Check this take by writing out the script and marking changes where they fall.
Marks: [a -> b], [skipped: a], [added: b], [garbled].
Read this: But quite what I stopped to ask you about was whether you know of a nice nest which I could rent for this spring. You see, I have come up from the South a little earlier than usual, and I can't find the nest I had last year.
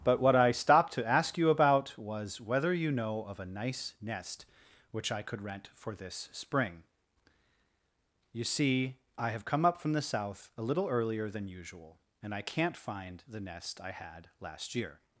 But [skipped: quite] what I stopped to ask you about was whether you know of a nice nest which I could rent for this spring. You see, I have come up from the South a little earlier than usual, and I can't find the nest I had last year.